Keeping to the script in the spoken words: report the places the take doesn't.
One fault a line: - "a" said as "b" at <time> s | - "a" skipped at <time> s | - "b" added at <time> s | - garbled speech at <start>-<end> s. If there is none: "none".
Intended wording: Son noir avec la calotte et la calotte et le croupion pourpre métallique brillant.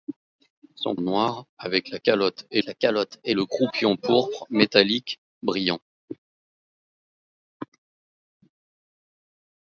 none